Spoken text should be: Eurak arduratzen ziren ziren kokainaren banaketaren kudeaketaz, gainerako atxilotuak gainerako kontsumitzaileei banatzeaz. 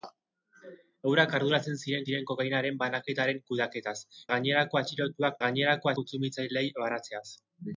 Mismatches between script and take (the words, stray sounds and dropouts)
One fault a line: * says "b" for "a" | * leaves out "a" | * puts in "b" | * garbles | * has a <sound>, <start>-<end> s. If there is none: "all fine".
all fine